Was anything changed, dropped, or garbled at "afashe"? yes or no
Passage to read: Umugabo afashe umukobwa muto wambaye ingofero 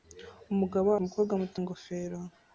yes